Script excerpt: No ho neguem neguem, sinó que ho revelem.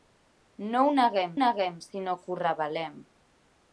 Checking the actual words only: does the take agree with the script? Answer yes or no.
yes